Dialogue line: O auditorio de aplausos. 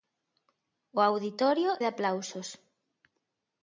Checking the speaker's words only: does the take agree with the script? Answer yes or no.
yes